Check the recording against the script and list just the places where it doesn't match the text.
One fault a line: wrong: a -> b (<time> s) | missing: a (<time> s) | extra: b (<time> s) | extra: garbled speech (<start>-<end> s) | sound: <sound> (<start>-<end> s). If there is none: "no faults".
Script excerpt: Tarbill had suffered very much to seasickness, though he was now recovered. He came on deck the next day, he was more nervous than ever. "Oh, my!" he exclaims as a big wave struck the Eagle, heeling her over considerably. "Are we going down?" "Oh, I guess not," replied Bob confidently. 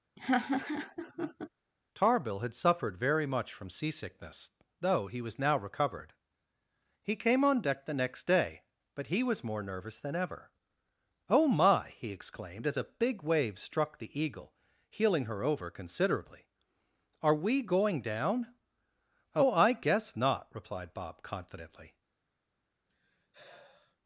sound: laugh (0.2-1.5 s)
wrong: to -> from (3.5 s)
extra: but (9.0 s)
wrong: exclaims -> exclaimed (12.1 s)
sound: sigh (22.9-24.0 s)